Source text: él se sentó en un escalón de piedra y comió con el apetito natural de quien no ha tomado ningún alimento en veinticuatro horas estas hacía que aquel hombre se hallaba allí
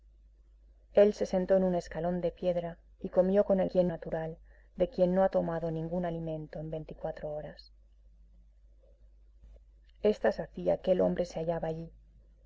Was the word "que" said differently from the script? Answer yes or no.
yes